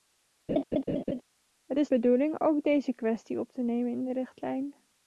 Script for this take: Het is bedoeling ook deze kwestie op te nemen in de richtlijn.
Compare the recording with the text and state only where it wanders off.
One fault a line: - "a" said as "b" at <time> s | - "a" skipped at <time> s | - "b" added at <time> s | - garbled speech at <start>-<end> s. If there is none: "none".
none